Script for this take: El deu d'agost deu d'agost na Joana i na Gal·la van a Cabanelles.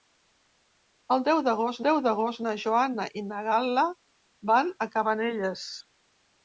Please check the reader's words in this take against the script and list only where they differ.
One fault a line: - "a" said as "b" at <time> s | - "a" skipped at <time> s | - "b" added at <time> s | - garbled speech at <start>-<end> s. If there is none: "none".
none